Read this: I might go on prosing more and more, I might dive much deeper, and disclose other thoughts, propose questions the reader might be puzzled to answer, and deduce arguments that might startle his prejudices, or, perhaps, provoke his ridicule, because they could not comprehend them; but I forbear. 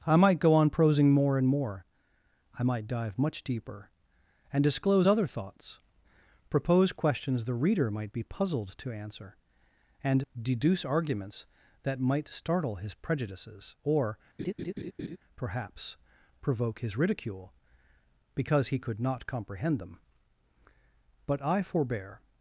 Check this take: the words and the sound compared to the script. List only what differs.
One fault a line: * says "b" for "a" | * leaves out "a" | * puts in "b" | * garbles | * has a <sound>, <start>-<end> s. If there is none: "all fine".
* has a laugh, 14.4-15.2 s
* says "he" for "they"